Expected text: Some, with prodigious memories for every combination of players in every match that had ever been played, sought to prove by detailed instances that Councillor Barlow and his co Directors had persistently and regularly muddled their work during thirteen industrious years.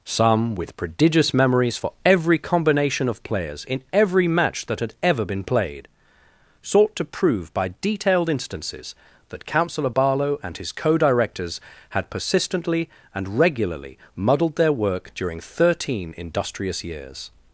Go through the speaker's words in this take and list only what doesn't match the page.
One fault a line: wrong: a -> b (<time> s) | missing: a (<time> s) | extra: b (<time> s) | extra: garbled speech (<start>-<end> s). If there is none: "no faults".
no faults